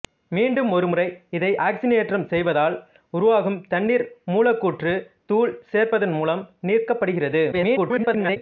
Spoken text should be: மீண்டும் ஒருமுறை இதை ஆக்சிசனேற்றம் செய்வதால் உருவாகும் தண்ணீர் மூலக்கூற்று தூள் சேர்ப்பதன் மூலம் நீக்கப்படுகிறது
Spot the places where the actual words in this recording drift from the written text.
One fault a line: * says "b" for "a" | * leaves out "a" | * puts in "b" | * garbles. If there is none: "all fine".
* garbles